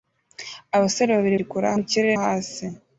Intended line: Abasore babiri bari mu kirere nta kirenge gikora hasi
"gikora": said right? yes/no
no